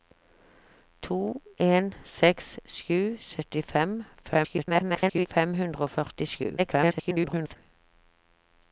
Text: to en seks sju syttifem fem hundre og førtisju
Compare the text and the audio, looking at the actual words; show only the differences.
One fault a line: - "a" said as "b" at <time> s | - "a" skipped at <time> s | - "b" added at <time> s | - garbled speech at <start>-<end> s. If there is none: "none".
- garbled speech at 4.2-5.3 s
- garbled speech at 6.6-7.6 s